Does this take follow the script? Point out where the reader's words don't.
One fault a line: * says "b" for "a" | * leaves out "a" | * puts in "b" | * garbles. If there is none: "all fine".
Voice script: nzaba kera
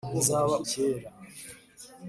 all fine